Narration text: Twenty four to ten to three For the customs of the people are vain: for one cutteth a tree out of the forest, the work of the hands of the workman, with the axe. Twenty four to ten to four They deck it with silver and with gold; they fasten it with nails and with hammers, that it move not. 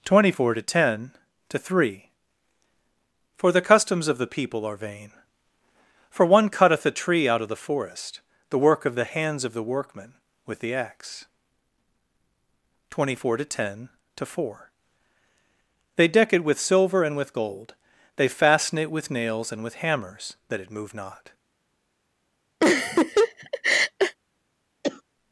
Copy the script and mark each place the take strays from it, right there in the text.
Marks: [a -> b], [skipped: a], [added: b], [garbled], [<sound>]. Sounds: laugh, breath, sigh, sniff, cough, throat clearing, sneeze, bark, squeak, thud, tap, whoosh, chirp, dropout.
Twenty four to ten to three For the customs of the people are vain: for one cutteth a tree out of the forest, the work of the hands of the workman, with the axe. Twenty four to ten to four They deck it with silver and with gold; they fasten it with nails and with hammers, that it move not. [laugh] [cough]